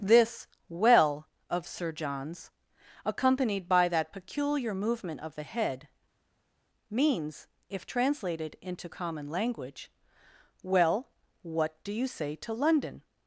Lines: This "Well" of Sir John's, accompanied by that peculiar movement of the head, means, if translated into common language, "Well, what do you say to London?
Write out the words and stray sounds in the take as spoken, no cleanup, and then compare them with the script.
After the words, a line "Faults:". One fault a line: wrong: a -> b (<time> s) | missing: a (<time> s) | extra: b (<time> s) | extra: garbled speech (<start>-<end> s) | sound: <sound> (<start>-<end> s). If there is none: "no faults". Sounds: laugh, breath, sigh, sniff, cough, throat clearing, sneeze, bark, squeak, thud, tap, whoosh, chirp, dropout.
This "Well" of Sir John's, accompanied by that peculiar movement of the head, means, if translated into common language, "Well, what do you say to London?
Faults:
no faults